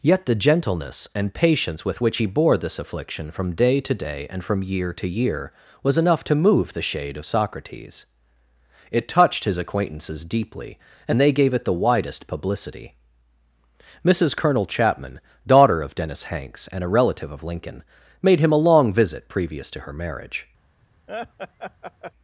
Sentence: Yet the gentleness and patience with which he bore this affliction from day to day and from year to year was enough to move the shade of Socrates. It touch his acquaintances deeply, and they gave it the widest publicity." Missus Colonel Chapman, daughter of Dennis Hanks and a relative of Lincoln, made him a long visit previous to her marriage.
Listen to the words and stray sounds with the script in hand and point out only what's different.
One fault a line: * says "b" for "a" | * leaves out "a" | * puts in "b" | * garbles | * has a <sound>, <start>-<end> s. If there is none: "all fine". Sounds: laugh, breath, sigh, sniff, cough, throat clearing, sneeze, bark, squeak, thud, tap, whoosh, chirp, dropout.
* says "touched" for "touch"
* has a laugh, 21.1-22.1 s